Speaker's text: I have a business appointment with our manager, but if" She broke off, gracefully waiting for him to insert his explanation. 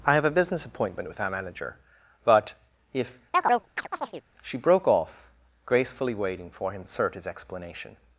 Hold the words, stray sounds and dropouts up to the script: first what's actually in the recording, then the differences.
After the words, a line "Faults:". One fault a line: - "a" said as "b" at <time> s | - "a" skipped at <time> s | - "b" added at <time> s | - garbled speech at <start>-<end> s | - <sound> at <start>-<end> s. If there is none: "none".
I have a business appointment with our manager, but if" She broke off, gracefully waiting for him insert his explanation.
Faults:
- chirp at 3.3-4.2 s
- "to" skipped at 6.8 s